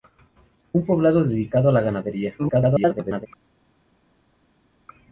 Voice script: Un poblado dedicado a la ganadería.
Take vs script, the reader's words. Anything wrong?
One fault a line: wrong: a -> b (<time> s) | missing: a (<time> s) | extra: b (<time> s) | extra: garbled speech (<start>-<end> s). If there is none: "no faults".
extra: garbled speech (2.4-3.3 s)